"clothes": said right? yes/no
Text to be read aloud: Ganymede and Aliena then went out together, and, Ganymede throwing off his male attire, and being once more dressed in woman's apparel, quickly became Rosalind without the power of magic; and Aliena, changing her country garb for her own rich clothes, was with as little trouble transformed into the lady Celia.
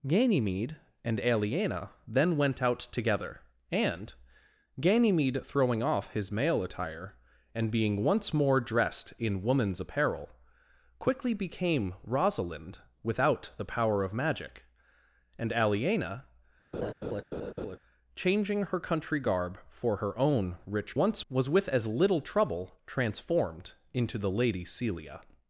no